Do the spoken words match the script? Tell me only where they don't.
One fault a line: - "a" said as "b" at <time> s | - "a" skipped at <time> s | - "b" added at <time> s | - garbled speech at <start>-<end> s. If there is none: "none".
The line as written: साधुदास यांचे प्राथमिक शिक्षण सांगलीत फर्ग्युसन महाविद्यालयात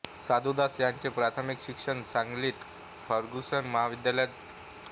none